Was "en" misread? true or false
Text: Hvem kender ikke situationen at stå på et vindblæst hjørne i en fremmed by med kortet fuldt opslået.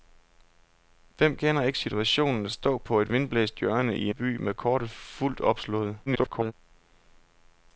true